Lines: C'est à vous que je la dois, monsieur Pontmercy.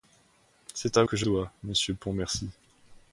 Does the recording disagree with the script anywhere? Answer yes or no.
yes